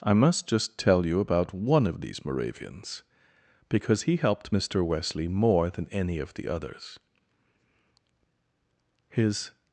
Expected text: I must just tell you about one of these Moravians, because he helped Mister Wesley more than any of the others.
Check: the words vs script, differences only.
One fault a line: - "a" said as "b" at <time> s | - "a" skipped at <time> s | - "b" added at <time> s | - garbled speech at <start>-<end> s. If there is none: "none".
- "His" added at 9.1 s